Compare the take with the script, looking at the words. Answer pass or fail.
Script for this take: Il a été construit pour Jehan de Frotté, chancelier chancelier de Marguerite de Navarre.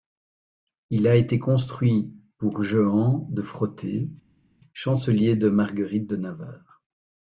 fail